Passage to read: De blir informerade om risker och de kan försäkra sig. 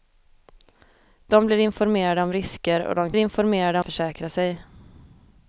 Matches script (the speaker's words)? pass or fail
fail